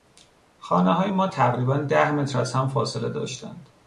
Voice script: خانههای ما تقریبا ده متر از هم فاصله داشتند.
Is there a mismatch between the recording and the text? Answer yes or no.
no